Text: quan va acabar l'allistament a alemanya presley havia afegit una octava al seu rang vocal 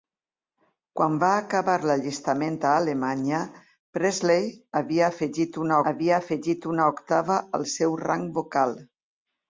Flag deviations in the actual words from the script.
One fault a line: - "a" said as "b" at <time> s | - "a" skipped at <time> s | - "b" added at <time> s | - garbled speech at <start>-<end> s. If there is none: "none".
- "havia afegit una" added at 5.9 s